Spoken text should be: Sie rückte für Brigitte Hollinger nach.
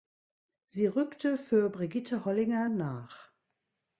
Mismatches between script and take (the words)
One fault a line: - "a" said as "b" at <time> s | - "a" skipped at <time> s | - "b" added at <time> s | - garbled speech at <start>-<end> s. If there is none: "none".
none